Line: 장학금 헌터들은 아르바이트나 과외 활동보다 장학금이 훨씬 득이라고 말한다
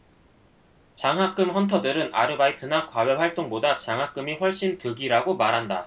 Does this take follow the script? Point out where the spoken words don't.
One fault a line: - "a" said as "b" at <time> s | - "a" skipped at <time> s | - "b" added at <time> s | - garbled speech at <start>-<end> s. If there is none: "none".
none